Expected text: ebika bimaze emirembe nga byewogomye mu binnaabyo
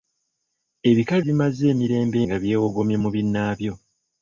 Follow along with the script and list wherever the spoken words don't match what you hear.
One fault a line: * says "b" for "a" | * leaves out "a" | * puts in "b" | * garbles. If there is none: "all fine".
all fine